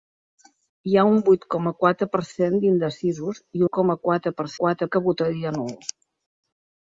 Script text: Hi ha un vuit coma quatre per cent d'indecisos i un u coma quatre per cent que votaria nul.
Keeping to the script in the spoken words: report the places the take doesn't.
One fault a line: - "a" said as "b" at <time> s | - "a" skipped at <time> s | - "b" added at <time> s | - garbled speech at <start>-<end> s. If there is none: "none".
- "un" skipped at 3.6 s
- "cent" said as "quatre" at 4.6 s